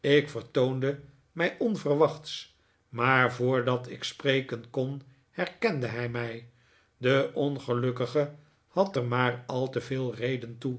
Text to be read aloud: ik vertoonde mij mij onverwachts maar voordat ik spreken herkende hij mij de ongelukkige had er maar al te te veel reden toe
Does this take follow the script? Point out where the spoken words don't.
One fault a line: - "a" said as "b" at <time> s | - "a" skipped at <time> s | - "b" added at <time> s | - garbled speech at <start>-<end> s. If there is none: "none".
- "mij" skipped at 1.6 s
- "kon" added at 4.7 s
- "te" skipped at 9.8 s